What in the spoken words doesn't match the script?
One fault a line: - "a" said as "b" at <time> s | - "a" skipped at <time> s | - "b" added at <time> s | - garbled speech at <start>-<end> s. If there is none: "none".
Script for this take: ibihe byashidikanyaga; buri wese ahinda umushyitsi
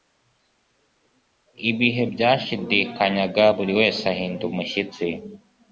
none